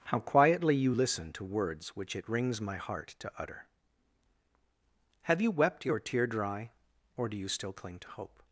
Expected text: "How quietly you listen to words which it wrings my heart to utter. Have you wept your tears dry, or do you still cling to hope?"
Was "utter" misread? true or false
false